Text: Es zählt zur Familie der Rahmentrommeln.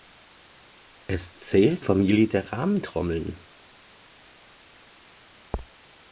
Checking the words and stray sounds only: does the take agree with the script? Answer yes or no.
no